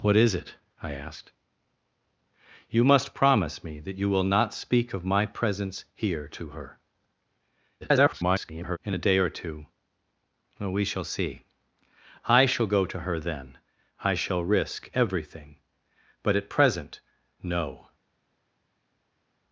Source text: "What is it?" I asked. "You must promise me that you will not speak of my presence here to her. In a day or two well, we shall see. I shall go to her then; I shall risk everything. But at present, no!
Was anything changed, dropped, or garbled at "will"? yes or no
no